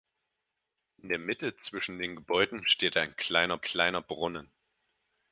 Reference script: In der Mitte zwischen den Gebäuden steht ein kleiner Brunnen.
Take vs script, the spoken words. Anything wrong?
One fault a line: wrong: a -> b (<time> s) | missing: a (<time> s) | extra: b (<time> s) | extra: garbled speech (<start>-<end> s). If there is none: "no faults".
extra: kleiner (3.6 s)